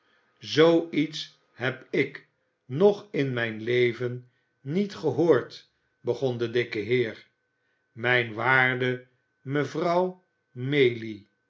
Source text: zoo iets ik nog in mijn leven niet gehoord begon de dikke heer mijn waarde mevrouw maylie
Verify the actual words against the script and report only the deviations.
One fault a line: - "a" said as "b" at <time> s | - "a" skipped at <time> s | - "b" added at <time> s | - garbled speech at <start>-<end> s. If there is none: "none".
- "heb" added at 1.5 s